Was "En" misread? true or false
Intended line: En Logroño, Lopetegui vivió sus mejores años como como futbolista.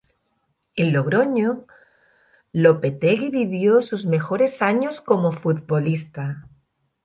false